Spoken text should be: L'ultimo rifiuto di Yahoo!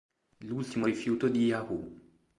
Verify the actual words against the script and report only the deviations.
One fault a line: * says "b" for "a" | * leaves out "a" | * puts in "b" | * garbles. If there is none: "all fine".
all fine